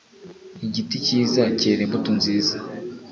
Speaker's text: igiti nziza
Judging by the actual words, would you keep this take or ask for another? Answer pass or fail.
fail